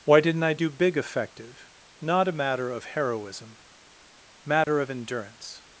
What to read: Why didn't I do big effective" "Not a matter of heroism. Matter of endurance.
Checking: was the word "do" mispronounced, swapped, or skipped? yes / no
no